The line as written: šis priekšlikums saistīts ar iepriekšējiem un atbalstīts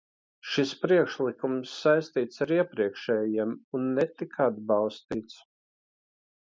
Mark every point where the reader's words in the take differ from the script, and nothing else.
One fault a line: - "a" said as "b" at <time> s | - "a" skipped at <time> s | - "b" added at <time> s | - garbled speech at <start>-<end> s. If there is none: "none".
- "netika" added at 4.0 s